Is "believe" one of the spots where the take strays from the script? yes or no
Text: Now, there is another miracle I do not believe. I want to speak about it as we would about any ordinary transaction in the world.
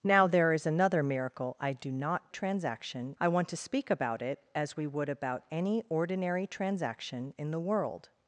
yes